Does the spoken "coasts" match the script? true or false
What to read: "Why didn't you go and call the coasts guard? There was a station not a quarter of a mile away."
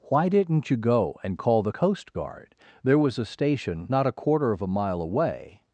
false